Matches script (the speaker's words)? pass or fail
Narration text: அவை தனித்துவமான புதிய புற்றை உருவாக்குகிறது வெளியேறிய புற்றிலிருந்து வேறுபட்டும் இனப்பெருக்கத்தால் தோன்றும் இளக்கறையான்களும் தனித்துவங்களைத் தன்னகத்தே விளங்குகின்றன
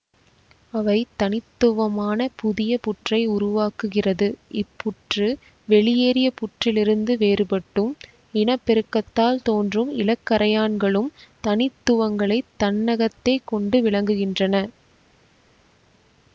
fail